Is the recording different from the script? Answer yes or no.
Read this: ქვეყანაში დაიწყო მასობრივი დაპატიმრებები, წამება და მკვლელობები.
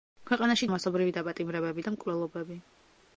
yes